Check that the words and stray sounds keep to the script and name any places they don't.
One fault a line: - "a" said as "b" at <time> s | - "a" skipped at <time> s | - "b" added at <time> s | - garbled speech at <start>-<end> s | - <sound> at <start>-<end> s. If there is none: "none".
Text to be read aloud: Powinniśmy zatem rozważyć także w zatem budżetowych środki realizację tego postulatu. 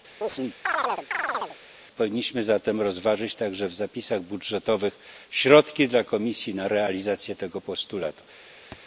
- chirp at 0.2-1.6 s
- "zatem" said as "zapisach" at 3.7 s
- "dla komisji na" added at 5.9 s
- thud at 8.7-8.8 s